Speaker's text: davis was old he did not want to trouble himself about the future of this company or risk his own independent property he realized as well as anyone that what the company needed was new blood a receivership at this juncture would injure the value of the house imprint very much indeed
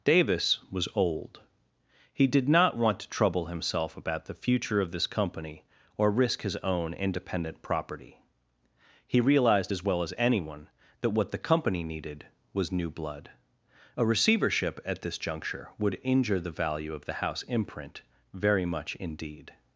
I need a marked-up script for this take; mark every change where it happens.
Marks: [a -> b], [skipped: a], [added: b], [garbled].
davis was old he did not want to trouble himself about the future of this company or risk his own independent property he realized as well as anyone that what the company needed was new blood a receivership at this juncture would injure the value of the house imprint very much indeed